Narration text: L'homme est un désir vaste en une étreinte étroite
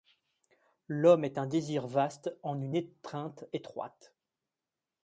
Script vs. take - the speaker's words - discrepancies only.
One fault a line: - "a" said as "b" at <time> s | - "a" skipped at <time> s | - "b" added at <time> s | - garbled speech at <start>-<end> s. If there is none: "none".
none